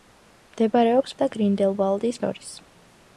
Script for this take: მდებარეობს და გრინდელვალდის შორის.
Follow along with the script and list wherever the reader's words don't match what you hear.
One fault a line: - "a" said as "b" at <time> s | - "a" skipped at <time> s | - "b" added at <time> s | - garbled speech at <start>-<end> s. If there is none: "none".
none